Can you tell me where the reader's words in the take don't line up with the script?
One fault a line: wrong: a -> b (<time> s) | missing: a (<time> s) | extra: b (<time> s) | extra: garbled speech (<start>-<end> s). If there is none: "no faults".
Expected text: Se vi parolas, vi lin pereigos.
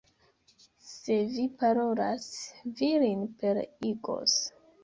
no faults